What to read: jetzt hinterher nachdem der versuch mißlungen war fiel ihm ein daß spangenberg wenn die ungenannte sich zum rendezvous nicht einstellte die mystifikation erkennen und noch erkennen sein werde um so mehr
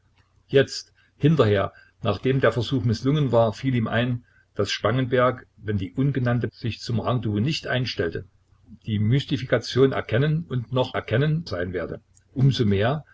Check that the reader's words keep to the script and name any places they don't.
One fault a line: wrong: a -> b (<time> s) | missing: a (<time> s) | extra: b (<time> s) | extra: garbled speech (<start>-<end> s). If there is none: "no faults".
no faults